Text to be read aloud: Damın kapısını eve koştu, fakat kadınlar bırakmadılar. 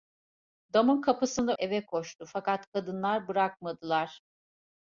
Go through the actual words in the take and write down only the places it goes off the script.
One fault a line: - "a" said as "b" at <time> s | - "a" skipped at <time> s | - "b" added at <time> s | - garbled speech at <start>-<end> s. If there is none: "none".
none